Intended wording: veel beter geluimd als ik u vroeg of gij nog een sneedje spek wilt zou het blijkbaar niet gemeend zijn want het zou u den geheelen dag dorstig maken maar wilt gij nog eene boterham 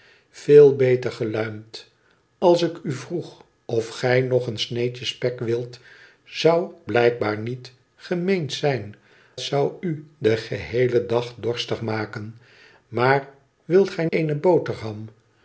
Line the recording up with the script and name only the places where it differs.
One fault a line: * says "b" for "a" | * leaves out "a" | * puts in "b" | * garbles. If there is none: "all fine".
* leaves out "het"
* leaves out "want het"
* leaves out "nog"